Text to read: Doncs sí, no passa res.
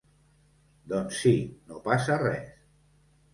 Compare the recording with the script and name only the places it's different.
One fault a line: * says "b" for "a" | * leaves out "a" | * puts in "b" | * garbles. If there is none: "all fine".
all fine